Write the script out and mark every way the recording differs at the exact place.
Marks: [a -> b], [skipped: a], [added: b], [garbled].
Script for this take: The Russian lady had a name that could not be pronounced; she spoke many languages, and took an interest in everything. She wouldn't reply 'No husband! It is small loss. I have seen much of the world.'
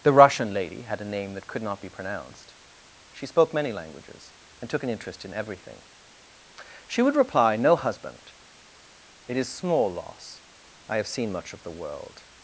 The Russian lady had a name that could not be pronounced; she spoke many languages, and took an interest in everything. She [wouldn't -> would] reply 'No husband! It is small loss. I have seen much of the world.'